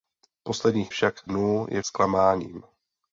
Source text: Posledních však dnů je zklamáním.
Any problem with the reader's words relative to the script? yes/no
no